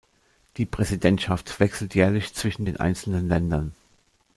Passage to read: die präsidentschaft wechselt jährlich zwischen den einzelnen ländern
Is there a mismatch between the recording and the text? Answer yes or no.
no